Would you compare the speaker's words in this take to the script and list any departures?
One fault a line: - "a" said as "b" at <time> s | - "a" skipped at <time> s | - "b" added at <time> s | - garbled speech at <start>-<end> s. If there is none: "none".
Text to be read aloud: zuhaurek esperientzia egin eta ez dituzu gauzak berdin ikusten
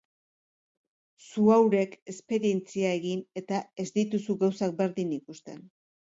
none